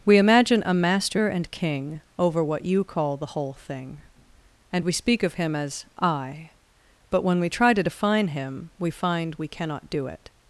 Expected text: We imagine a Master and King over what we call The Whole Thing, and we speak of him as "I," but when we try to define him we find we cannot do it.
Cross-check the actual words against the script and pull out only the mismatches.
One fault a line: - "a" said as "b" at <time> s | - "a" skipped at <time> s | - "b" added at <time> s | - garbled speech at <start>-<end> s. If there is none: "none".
- "we" said as "you" at 2.6 s